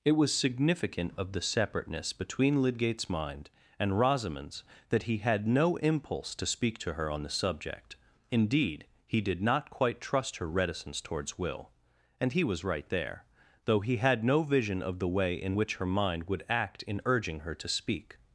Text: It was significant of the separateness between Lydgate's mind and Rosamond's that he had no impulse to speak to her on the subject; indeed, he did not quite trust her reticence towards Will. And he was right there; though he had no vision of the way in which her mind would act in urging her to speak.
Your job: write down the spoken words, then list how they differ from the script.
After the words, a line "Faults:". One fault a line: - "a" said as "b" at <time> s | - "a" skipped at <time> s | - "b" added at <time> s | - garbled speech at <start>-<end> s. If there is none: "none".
It was significant of the separateness between Lydgate's mind and Rosamond's that he had no impulse to speak to her on the subject; indeed, he did not quite trust her reticence towards Will. And he was right there; though he had no vision of the way in which her mind would act in urging her to speak.
Faults:
none